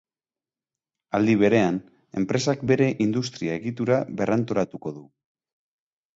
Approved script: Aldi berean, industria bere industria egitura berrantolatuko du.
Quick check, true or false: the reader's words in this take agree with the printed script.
false